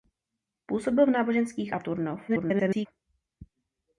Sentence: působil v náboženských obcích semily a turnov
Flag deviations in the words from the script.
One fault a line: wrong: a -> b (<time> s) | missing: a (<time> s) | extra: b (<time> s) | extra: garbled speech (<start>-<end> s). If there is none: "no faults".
missing: obcích semily (1.8 s)
extra: garbled speech (2.3-2.9 s)